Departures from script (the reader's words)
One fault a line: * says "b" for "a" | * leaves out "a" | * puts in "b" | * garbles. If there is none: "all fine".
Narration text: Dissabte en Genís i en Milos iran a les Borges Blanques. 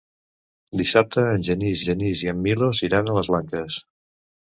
* puts in "Genís"
* leaves out "Borges"